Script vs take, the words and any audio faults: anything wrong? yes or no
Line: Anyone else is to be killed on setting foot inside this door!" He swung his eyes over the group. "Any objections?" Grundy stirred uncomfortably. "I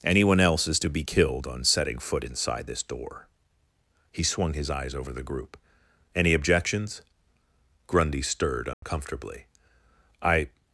yes